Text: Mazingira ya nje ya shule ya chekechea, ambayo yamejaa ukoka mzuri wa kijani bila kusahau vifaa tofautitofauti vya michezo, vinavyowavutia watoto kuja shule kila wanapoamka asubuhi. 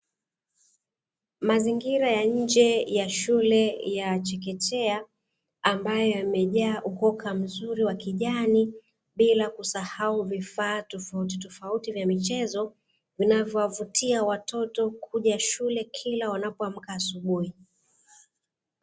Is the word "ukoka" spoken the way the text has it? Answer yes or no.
yes